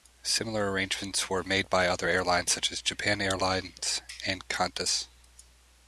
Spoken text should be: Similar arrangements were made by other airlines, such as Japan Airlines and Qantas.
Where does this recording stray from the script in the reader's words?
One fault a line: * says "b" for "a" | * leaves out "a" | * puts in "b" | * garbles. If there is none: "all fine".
all fine